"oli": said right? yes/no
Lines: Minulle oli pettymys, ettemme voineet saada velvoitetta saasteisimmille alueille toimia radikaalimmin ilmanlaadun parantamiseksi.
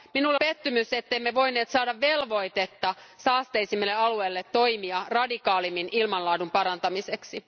no